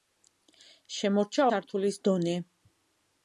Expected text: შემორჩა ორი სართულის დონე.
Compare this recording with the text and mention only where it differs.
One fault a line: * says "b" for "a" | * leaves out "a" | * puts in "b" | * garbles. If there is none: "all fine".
* leaves out "ორი"